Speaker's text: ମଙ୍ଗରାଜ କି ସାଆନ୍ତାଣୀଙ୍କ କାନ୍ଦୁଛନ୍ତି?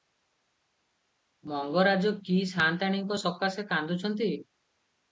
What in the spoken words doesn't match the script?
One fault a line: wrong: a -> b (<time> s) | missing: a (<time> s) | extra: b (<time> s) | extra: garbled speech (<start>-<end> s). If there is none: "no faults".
extra: ସକାଶେ (3.3 s)